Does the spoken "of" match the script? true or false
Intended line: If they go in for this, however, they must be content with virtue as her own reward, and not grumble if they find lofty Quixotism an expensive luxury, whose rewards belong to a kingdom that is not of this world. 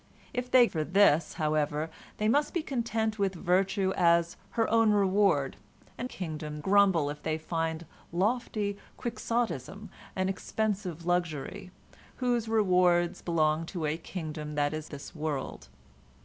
false